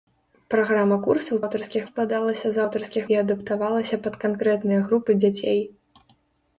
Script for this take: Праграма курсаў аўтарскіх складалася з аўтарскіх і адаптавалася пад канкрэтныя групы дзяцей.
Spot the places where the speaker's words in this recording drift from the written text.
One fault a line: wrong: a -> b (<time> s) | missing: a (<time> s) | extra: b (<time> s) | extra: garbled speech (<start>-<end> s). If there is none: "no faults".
no faults